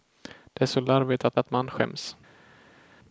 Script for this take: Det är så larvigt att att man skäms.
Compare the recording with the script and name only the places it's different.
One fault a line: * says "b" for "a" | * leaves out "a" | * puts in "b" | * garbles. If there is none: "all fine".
all fine